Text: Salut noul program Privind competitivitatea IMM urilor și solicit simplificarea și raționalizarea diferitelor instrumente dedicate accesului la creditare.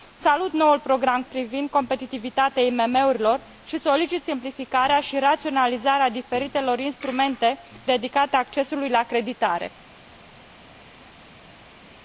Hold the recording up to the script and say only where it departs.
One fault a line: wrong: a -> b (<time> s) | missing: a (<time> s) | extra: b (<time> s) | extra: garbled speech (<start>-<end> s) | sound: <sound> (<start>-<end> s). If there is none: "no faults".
no faults